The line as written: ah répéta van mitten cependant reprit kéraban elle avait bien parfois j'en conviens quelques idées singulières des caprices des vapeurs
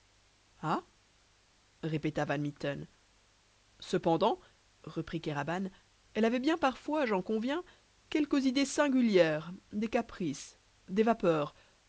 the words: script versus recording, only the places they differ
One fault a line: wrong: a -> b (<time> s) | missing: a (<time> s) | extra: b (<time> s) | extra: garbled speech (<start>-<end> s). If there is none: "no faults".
no faults